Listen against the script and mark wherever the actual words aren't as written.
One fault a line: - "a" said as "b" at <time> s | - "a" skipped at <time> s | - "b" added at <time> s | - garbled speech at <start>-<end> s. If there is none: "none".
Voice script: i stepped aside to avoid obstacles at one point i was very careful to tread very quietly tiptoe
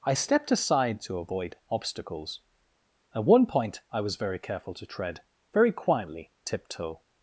none